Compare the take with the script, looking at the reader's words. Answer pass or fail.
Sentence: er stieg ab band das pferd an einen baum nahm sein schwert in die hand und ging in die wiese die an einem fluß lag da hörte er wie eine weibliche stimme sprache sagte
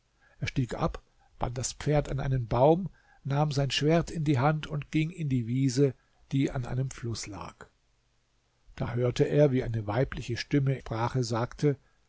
pass